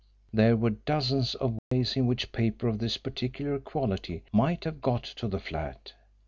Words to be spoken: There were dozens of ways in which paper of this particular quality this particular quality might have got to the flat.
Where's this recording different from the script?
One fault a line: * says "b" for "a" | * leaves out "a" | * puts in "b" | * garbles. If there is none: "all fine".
* leaves out "this particular quality"